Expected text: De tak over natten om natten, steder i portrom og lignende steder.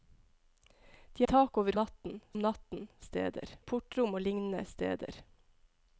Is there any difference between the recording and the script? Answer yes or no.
no